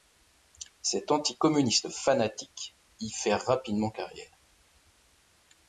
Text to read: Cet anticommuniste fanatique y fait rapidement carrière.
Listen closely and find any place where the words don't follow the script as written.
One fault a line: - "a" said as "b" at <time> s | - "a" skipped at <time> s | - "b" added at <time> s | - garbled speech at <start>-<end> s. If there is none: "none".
none